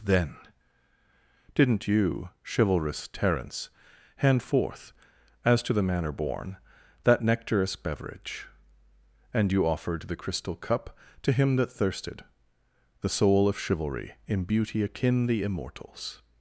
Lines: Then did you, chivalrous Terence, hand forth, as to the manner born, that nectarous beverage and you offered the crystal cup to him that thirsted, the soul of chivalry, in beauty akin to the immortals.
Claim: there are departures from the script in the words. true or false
true